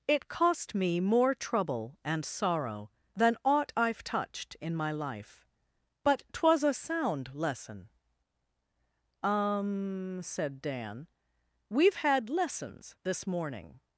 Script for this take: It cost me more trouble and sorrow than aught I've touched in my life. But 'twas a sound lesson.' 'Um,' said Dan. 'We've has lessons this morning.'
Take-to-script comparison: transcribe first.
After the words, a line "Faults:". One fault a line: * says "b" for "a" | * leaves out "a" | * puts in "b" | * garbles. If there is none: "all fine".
It cost me more trouble and sorrow than aught I've touched in my life. But 'twas a sound lesson.' 'Um,' said Dan. 'We've had lessons this morning.'
Faults:
* says "had" for "has"